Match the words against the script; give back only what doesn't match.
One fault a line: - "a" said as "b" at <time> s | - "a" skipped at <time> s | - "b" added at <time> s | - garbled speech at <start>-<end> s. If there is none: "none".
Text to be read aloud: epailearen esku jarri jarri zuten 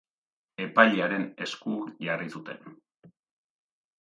- "jarri" skipped at 2.3 s